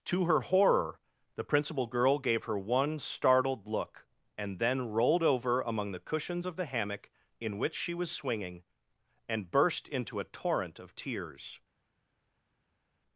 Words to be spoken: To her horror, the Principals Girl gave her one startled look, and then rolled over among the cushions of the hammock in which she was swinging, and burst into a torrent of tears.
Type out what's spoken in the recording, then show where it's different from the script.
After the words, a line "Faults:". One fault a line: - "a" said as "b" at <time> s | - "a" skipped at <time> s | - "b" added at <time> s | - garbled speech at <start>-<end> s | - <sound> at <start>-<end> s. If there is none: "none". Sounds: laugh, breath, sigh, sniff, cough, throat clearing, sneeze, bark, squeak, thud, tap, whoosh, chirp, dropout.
To her horror, the Principal Girl gave her one startled look, and then rolled over among the cushions of the hammock in which she was swinging, and burst into a torrent of tears.
Faults:
- "Principals" said as "Principal" at 1.4 s